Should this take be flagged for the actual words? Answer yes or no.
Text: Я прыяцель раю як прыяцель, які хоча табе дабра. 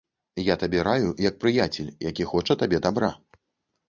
yes